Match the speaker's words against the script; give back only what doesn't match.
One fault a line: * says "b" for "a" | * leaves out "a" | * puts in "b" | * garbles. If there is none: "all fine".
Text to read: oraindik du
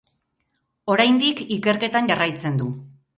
* puts in "ikerketan jarraitzen"